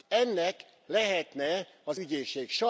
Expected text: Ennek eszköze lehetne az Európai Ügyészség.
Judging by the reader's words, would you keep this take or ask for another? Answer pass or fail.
fail